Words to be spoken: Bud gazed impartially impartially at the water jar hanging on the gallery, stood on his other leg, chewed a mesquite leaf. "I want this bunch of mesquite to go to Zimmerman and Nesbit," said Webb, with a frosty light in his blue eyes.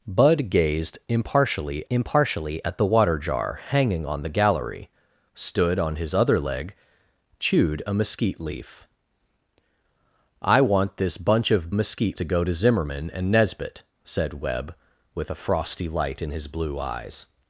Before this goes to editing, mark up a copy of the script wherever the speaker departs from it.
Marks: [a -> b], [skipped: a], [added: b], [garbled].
Bud gazed impartially impartially at the water jar hanging on the gallery, stood on his other leg, chewed a mesquite leaf. "I want this bunch of mesquite to go to Zimmerman and Nesbit," said Webb, with a frosty light in his blue eyes.